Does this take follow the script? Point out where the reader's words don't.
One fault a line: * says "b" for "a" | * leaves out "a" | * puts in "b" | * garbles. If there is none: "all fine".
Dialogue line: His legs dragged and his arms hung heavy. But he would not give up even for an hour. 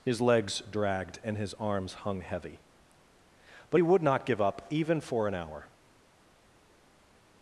all fine